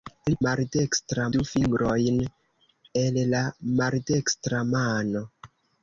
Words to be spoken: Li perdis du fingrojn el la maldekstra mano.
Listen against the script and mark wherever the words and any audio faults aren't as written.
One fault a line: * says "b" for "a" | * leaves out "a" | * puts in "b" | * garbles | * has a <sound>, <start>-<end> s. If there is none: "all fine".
* says "maldekstra" for "perdis"